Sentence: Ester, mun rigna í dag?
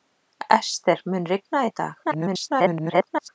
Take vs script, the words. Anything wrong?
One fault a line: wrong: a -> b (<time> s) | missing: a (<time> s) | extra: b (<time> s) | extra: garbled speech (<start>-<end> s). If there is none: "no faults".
extra: garbled speech (2.0-3.3 s)